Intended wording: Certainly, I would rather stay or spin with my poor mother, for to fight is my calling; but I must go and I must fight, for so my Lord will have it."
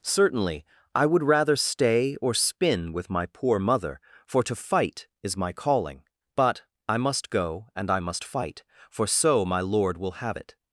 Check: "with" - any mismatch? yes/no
no